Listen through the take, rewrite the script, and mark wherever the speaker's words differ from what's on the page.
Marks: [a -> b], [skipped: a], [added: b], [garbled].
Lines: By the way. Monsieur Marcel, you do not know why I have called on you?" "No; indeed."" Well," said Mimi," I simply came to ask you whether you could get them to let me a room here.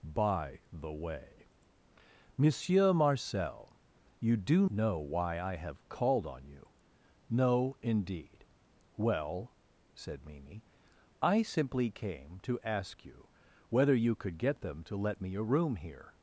By the way. Monsieur Marcel, you do [skipped: not] know why I have called on you?" "No; indeed."" Well," said Mimi," I simply came to ask you whether you could get them to let me a room here.